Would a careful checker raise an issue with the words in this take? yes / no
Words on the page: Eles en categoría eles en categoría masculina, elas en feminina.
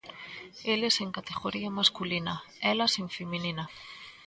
yes